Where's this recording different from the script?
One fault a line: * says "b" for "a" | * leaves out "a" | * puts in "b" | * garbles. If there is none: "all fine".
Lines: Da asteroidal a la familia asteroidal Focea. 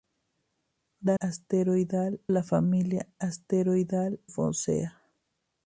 all fine